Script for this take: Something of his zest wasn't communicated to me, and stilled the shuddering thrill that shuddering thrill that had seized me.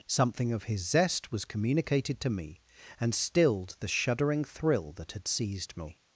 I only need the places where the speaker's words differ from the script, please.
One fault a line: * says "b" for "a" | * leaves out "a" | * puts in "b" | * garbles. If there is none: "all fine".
* says "was" for "wasn't"
* leaves out "shuddering thrill that"